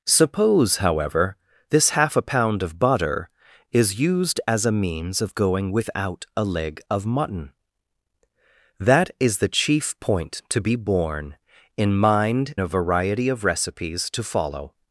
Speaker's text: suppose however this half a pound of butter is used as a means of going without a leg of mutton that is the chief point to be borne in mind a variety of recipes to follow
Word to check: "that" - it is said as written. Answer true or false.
true